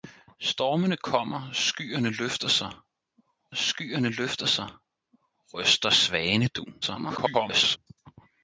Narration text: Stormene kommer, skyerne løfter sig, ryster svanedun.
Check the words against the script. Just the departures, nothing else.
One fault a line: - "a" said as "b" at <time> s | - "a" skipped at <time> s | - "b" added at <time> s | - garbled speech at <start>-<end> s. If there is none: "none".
- "skyerne løfter sig" added at 3.5 s
- garbled speech at 6.8-7.8 s